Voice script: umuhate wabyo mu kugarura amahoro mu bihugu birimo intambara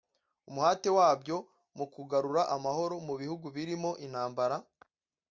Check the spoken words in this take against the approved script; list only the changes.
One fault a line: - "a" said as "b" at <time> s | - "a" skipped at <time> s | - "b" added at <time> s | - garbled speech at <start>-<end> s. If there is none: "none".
none